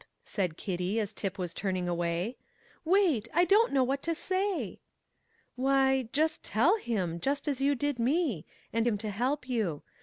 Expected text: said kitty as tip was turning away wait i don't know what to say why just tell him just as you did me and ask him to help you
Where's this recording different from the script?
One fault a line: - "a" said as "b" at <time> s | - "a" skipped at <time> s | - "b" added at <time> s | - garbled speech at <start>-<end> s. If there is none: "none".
- "ask" skipped at 8.9 s